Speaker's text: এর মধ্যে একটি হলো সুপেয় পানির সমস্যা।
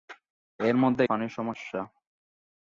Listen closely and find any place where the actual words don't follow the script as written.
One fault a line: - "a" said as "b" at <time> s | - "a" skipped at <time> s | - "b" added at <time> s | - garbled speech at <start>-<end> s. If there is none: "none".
- "একটি হলো সুপেয়" skipped at 1.0 s